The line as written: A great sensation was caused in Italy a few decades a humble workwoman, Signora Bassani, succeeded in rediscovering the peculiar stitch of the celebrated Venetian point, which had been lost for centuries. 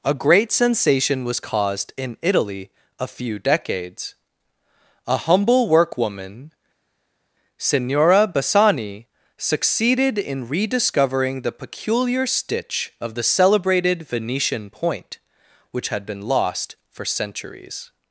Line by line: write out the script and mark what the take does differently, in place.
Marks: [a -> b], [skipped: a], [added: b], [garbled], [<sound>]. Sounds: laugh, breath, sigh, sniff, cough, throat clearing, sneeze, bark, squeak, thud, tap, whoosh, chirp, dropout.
A great sensation was caused in Italy a few decades a humble workwoman, Signora Bassani, succeeded in rediscovering the peculiar stitch of the celebrated Venetian point, which had been lost for centuries.